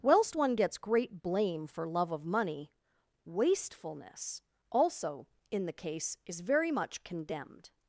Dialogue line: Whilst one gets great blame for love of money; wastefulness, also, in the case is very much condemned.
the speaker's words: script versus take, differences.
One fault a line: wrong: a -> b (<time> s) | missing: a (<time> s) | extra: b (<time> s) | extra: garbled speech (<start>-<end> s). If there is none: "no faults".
no faults